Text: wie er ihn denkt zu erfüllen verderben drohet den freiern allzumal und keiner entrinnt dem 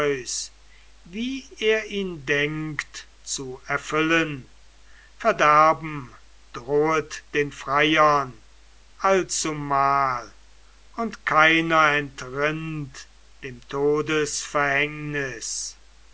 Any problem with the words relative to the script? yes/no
no